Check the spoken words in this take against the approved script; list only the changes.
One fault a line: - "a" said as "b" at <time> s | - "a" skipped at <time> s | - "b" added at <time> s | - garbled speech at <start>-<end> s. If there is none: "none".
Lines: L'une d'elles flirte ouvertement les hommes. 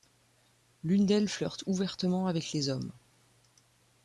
- "avec" added at 2.3 s